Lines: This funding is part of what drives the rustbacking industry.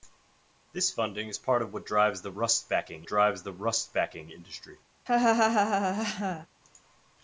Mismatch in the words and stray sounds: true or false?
true